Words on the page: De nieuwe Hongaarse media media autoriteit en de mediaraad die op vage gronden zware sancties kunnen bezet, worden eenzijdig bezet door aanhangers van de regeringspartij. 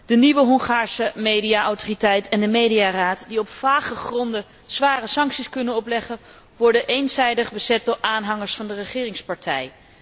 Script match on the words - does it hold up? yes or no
no